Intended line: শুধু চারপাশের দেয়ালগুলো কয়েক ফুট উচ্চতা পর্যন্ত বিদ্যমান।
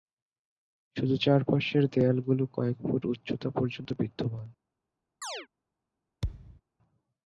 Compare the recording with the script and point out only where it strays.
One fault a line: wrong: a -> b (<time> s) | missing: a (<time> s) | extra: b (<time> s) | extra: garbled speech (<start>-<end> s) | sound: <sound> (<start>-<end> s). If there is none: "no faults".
sound: chirp (5.2-5.5 s)
sound: thud (6.2-6.6 s)